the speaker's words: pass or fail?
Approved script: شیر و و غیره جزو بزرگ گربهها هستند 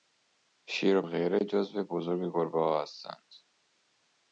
pass